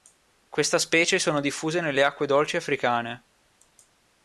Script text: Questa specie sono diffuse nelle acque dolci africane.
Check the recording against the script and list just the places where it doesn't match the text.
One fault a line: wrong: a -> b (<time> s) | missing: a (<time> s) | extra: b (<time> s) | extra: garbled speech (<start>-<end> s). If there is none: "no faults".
no faults